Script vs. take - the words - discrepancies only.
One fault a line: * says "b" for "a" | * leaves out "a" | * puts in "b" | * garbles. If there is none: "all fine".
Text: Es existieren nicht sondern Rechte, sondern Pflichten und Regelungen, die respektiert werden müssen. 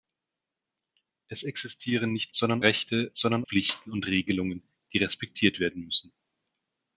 all fine